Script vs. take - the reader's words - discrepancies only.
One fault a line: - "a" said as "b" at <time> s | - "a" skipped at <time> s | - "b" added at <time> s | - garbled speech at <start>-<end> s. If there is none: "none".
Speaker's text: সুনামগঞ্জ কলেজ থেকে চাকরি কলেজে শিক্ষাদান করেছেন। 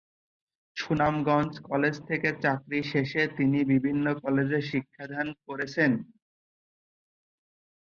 - "শেষে তিনি বিভিন্ন" added at 2.9 s